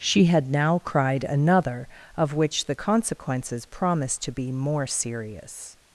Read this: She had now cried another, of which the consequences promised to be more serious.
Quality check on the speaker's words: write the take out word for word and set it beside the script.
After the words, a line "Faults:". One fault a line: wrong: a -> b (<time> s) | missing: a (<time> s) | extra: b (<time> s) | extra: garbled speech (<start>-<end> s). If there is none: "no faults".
She had now cried another, of which the consequences promised to be more serious.
Faults:
no faults